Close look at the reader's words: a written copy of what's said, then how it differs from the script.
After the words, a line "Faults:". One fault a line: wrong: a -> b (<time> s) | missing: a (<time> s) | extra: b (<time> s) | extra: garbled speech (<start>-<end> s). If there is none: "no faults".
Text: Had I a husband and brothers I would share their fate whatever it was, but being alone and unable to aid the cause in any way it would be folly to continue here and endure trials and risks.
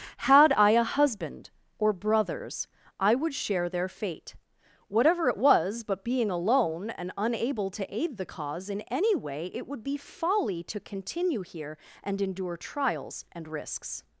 Had I a husband or brothers I would share their fate whatever it was, but being alone and unable to aid the cause in any way it would be folly to continue here and endure trials and risks.
Faults:
wrong: and -> or (1.8 s)